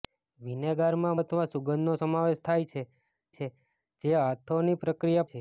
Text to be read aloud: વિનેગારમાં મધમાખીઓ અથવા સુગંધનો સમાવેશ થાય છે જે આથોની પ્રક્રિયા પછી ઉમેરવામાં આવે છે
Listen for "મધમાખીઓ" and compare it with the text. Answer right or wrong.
wrong